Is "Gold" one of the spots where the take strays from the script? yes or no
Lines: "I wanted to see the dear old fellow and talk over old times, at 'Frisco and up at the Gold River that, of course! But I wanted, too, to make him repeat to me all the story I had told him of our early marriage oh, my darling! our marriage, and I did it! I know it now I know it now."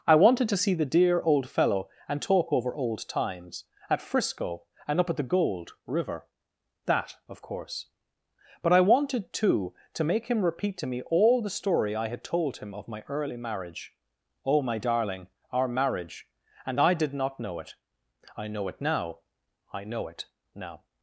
no